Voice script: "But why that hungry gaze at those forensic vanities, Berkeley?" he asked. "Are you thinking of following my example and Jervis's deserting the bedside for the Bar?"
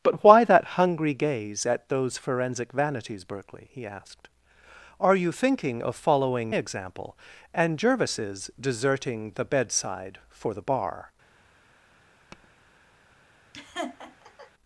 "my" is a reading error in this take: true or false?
true